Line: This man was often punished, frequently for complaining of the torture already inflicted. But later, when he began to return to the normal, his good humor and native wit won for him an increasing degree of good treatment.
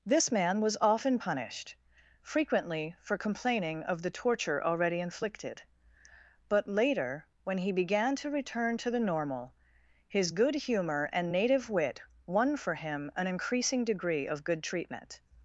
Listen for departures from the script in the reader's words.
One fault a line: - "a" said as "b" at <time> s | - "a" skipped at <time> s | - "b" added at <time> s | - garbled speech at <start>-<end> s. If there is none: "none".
none